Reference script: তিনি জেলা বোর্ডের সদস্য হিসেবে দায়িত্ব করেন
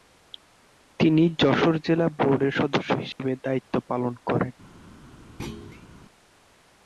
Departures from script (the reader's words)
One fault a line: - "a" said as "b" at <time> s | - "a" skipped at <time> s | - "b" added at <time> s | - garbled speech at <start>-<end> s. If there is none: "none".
- "যশোর" added at 1.4 s
- "পালন" added at 3.9 s